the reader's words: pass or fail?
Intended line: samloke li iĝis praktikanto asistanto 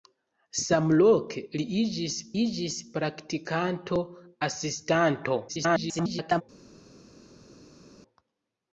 fail